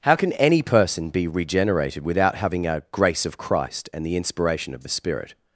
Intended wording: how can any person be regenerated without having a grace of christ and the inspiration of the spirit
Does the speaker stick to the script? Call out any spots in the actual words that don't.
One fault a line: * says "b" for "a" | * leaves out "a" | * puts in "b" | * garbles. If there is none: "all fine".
all fine